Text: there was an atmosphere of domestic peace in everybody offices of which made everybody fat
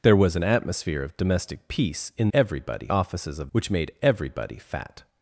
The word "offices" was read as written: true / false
true